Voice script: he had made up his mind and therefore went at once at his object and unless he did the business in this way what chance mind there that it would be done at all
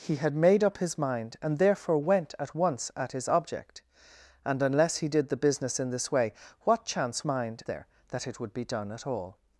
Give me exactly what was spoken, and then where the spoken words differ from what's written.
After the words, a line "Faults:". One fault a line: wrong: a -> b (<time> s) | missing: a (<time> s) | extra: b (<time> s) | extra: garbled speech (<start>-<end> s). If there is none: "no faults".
he had made up his mind and therefore went at once at his object and unless he did the business in this way what chance mind there that it would be done at all
Faults:
no faults